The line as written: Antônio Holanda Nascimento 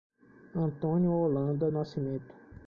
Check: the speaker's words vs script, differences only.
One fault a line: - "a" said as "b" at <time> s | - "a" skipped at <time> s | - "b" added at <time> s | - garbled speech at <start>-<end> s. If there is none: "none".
none